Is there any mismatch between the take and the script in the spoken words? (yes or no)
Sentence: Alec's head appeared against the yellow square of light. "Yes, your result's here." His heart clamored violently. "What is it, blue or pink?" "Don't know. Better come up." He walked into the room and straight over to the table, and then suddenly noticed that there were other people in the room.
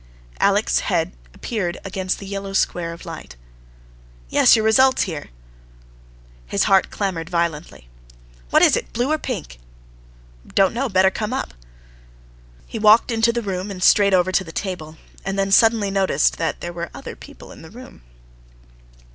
no